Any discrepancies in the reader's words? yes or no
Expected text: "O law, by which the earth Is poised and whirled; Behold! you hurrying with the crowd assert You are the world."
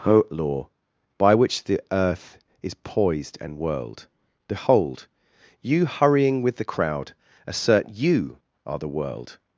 no